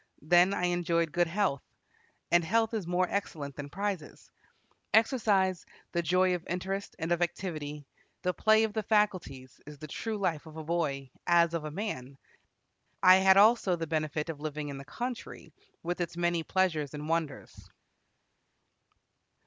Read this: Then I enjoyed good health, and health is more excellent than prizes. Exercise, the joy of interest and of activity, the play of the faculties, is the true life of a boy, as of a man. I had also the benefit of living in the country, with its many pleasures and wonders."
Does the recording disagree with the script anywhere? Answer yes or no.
no